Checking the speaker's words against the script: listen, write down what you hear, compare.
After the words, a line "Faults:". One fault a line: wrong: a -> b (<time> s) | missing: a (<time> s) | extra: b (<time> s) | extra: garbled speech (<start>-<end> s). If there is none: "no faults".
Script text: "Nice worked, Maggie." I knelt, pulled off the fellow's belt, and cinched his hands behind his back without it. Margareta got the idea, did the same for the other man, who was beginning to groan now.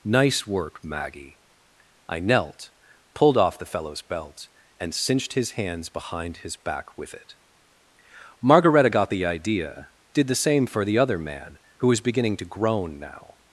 "Nice work, Maggie." I knelt, pulled off the fellow's belt, and cinched his hands behind his back with it. Margareta got the idea, did the same for the other man, who was beginning to groan now.
Faults:
wrong: worked -> work (0.5 s)
wrong: without -> with (7.0 s)